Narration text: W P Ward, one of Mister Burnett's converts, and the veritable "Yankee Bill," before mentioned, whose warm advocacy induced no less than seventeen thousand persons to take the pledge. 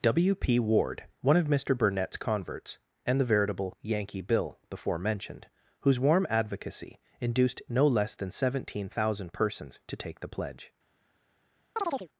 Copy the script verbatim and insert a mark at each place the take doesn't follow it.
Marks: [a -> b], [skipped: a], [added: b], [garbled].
W P Ward, one of Mister Burnett's converts, and the veritable "Yankee Bill," before mentioned, whose warm advocacy induced no less than seventeen thousand persons to take the pledge.